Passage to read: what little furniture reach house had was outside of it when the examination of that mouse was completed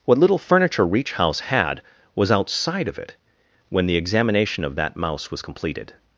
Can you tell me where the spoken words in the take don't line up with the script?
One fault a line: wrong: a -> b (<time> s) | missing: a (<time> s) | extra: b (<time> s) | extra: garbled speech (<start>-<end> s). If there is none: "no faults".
no faults